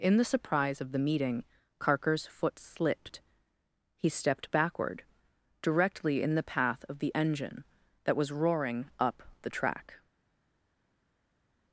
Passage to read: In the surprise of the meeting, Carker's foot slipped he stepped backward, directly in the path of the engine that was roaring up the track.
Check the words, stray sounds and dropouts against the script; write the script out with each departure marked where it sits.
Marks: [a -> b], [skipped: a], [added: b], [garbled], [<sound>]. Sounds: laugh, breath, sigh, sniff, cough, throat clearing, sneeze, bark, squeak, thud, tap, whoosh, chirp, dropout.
In the surprise of the meeting, Carker's foot slipped he stepped backward, directly in the path of the engine that was roaring up the track.